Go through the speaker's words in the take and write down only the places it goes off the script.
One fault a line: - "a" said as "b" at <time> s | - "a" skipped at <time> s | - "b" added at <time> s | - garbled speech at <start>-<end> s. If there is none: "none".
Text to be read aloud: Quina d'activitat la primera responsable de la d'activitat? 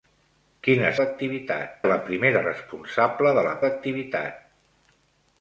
none